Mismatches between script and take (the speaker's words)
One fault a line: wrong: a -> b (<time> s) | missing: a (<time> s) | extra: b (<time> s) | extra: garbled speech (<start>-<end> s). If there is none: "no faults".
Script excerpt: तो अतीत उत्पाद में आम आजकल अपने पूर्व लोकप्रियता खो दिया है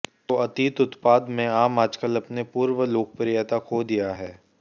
no faults